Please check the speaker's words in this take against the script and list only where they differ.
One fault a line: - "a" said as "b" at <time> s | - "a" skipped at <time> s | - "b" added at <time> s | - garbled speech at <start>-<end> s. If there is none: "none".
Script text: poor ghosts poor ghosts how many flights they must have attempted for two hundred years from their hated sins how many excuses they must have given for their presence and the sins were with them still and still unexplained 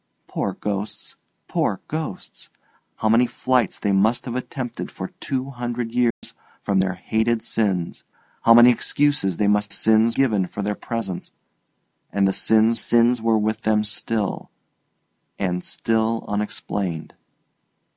- "have" said as "sins" at 9.7 s
- "sins" added at 12.8 s